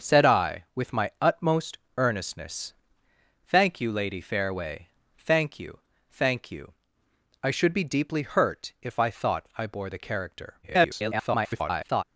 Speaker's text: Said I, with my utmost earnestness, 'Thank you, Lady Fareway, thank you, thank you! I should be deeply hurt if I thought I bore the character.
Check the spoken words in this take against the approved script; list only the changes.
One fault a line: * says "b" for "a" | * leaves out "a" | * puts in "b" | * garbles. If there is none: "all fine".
* garbles